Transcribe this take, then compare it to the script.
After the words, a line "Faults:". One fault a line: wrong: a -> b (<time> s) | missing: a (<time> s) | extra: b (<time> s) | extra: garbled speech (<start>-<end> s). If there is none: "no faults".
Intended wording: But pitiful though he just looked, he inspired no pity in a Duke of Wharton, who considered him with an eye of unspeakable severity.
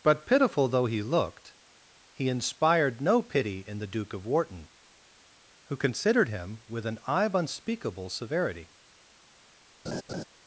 But pitiful though he looked, he inspired no pity in the Duke of Wharton, who considered him with an eye of unspeakable severity.
Faults:
missing: just (1.0 s)
wrong: a -> the (3.8 s)